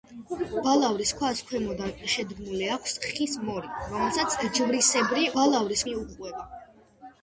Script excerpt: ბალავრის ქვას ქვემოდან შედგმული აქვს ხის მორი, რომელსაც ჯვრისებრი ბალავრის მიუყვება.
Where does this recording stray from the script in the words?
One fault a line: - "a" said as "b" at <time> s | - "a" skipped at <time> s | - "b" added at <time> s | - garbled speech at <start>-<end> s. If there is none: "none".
none